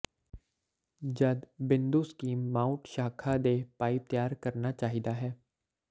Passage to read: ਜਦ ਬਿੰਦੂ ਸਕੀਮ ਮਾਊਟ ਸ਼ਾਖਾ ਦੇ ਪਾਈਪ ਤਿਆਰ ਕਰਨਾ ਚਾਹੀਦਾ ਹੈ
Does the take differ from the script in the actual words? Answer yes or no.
no